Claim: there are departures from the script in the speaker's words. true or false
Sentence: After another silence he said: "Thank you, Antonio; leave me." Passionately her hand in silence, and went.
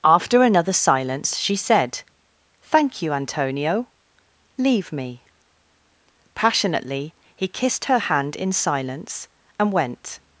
true